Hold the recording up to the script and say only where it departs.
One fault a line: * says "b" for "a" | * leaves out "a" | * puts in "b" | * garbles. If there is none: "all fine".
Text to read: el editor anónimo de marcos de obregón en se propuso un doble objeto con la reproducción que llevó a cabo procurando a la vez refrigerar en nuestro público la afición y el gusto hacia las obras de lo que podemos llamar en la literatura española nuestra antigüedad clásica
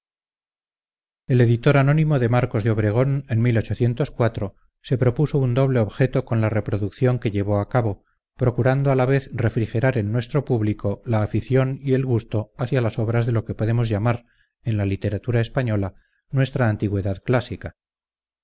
all fine